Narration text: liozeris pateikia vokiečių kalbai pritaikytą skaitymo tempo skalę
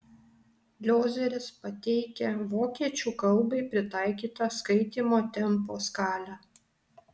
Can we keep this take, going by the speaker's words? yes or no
yes